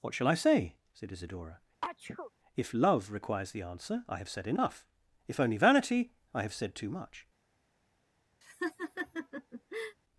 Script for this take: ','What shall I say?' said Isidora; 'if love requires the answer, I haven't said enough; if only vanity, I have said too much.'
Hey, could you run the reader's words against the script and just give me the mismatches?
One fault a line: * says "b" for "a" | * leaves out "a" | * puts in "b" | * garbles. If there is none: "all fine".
* says "have" for "haven't"